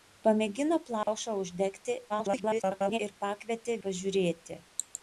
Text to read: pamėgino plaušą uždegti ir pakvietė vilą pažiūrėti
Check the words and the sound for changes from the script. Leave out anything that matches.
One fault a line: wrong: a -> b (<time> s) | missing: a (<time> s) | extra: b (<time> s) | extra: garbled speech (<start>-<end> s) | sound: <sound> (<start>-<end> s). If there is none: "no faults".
sound: dropout (1.0-1.1 s)
extra: garbled speech (2.1-3.0 s)
missing: vilą (3.8 s)